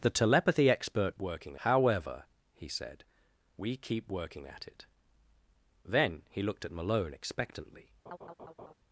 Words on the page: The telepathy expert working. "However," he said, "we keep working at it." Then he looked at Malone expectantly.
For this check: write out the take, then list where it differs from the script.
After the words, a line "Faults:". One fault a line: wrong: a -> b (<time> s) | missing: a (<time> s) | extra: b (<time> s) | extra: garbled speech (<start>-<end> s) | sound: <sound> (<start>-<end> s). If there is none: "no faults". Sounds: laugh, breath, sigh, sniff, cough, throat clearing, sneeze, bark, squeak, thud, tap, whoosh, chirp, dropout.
The telepathy expert working. "However," he said, "we keep working at it." Then he looked at Malone expectantly.
Faults:
sound: laugh (8.1-8.7 s)